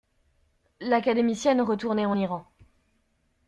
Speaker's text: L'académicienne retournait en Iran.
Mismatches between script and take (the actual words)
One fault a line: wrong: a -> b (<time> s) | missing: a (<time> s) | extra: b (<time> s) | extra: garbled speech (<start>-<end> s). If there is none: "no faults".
no faults